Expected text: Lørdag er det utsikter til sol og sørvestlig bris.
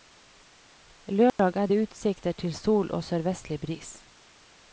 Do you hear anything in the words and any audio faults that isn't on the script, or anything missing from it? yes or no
yes